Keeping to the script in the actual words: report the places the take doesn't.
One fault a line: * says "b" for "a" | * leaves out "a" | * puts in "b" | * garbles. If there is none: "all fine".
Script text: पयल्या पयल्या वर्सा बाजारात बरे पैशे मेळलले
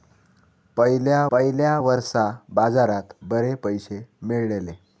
all fine